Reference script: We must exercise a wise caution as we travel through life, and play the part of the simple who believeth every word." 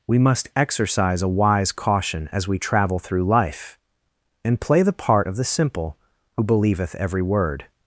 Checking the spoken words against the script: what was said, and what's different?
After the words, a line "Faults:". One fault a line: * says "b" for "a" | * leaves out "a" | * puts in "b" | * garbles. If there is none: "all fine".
We must exercise a wise caution as we travel through life, and play the part of the simple who believeth every word."
Faults:
all fine